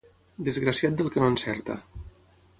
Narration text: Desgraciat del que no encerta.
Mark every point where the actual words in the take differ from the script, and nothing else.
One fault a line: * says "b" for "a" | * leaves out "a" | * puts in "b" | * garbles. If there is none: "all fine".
all fine